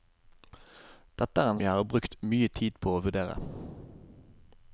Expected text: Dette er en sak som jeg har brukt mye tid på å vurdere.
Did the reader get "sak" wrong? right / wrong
wrong